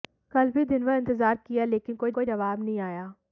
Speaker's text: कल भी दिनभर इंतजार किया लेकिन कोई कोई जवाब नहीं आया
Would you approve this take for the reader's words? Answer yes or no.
yes